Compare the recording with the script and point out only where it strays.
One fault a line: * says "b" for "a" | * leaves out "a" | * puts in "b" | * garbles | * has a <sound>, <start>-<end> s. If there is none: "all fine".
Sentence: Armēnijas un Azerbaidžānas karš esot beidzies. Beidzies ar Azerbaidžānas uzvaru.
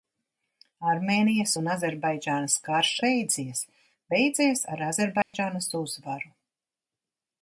* leaves out "esot"
* has a dropout, 5.2-5.3 s